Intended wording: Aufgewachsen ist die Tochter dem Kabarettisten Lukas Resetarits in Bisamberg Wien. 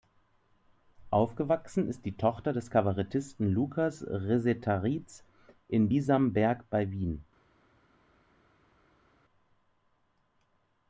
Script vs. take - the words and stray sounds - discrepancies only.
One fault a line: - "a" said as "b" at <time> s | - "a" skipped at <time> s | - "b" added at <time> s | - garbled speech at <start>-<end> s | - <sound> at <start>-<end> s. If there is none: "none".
- "dem" said as "des" at 2.5 s
- "bei" added at 6.7 s